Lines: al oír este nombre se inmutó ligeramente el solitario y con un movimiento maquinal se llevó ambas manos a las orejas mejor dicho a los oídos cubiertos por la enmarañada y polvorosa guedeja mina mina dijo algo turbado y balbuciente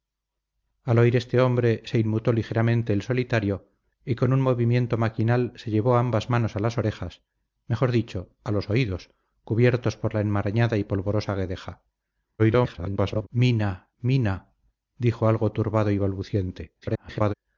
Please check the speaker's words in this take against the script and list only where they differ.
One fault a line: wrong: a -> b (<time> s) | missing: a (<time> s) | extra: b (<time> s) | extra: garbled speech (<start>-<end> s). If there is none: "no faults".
extra: garbled speech (12.4-13.3 s)
extra: garbled speech (16.8-17.3 s)